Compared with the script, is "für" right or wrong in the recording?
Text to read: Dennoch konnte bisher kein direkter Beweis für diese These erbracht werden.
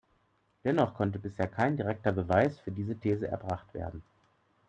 right